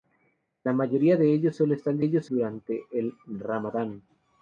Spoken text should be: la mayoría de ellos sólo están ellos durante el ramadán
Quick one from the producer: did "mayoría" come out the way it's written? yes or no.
yes